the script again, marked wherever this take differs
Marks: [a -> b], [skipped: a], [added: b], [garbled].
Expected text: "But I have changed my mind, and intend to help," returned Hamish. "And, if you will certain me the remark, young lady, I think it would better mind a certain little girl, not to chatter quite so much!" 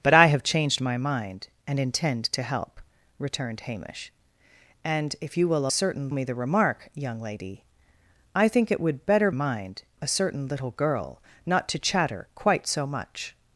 "But I have changed my mind, and intend to help," returned Hamish. "And, if you will certain me the remark, young lady, I think it would better mind a certain little girl, not to chatter quite so much!"